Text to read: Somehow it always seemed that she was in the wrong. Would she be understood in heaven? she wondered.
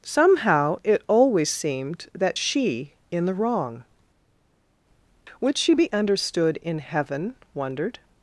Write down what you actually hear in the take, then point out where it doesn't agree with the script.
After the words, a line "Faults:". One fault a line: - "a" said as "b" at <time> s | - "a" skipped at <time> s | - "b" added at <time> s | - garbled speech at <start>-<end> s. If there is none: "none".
Somehow it always seemed that she in the wrong. Would she be understood in heaven? wondered.
Faults:
- "was" skipped at 2.9 s
- "she" skipped at 7.4 s